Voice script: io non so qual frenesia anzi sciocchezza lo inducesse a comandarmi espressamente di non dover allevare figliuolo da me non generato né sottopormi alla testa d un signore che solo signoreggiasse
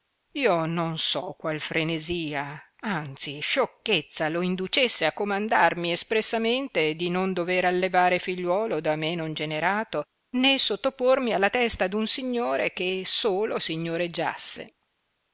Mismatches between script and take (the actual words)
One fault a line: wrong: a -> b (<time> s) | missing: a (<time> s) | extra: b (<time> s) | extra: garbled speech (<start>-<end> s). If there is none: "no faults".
no faults